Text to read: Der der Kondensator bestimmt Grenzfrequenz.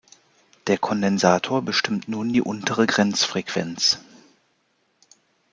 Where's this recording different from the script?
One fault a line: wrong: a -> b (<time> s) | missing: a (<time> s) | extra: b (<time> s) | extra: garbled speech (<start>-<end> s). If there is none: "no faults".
missing: der (0.8 s)
extra: nun die untere (2.1 s)